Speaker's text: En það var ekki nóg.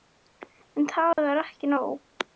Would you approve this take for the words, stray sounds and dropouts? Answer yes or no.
no